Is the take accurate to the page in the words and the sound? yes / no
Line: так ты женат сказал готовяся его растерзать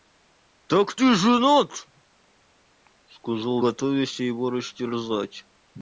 yes